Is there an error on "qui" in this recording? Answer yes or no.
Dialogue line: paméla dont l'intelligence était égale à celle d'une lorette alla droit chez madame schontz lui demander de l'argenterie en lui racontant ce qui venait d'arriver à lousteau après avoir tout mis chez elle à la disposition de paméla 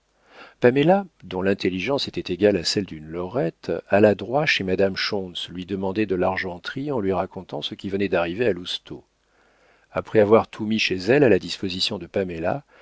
no